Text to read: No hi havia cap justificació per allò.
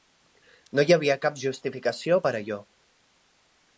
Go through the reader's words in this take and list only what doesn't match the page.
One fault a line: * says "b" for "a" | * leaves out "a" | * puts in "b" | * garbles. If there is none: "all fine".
all fine